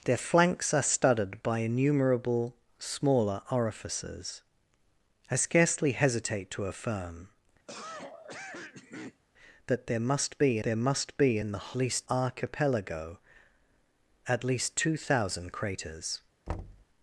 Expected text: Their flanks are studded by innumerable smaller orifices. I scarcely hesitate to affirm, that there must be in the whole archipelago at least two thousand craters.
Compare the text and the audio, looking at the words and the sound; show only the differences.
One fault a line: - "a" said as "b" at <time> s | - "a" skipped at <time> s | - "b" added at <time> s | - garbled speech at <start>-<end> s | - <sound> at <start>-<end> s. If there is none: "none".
- cough at 7.7-9.2 s
- "there must be" added at 10.6 s
- "whole" said as "least" at 11.8 s
- thud at 16.5-16.9 s